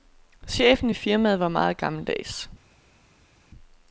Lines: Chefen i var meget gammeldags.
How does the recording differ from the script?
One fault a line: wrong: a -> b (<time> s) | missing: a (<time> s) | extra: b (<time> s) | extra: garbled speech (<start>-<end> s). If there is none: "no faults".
extra: firmaet (0.9 s)